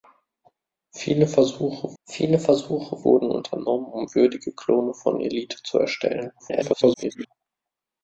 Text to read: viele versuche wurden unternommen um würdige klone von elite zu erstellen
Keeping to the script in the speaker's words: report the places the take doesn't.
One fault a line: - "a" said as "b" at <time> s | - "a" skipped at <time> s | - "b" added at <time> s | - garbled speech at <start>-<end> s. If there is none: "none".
- "viele versuche" added at 2.0 s
- garbled speech at 6.4-7.3 s